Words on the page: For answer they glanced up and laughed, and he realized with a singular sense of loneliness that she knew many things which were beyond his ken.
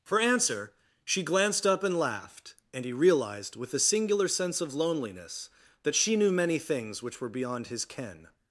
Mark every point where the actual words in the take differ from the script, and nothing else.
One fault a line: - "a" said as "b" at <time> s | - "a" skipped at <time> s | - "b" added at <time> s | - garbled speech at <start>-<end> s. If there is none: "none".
- "they" said as "she" at 1.1 s